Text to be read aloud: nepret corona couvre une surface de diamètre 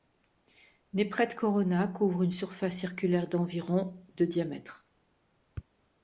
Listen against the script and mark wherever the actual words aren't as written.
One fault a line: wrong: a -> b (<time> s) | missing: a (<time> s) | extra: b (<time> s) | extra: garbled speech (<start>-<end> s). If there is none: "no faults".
extra: circulaire d'environ (2.8 s)